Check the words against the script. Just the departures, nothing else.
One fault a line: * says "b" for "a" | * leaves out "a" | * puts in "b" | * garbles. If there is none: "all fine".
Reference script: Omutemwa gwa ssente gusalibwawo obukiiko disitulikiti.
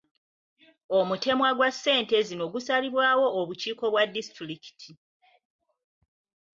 * puts in "zino"
* puts in "bwa"